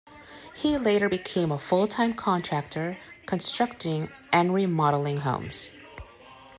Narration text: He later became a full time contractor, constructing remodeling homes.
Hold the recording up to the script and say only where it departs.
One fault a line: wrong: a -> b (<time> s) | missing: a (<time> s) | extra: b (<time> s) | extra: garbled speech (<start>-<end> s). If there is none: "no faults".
extra: and (4.3 s)